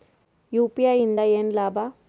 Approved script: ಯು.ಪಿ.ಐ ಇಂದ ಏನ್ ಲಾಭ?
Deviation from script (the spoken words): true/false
false